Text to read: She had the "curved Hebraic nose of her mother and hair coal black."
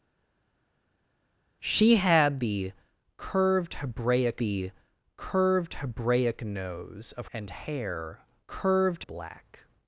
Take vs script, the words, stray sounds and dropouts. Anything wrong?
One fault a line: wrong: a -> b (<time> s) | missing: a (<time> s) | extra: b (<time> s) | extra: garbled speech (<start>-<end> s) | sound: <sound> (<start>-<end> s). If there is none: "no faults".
extra: the curved Hebraic (4.4 s)
missing: her mother (7.3 s)
wrong: coal -> curved (8.5 s)